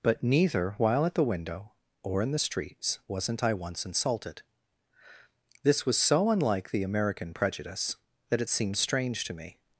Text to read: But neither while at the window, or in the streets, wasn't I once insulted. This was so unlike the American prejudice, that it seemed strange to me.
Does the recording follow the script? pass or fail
pass